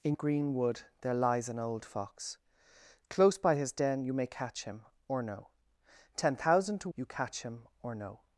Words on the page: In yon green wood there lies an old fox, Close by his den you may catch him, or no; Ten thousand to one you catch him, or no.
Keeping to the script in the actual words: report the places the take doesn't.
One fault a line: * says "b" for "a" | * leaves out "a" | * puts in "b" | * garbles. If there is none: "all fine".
* leaves out "yon"
* leaves out "one"